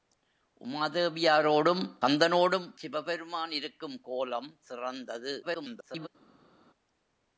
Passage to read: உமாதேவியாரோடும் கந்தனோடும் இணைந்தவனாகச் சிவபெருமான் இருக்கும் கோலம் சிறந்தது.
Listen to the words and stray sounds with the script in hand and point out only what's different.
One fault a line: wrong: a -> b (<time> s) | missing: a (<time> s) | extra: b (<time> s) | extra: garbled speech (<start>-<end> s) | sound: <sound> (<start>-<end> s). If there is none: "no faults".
missing: இணைந்தவனாகச் (2.7 s)
extra: garbled speech (5.4-6.1 s)